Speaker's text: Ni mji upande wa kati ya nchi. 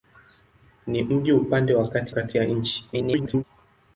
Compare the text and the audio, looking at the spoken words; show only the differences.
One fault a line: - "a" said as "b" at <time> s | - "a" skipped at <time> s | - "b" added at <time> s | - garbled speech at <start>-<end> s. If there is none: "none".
- "kati" added at 2.1 s
- garbled speech at 2.9-3.4 s